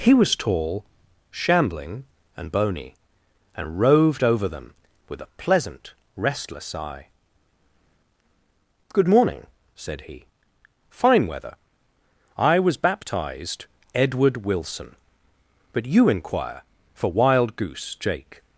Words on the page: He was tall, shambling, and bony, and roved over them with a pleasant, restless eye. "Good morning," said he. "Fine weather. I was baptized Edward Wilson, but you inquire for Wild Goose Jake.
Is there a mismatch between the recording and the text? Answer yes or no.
no